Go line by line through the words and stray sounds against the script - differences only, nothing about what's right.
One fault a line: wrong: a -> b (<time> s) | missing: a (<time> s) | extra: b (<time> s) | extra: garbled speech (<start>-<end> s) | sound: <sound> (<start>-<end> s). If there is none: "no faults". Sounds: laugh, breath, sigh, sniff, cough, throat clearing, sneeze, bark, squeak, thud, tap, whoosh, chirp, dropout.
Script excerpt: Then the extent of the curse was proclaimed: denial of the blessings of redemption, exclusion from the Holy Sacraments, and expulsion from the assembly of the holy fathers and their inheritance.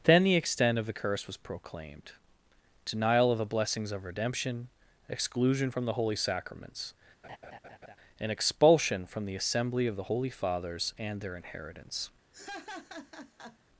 sound: laugh (7.2-8.0 s)
sound: laugh (12.3-13.6 s)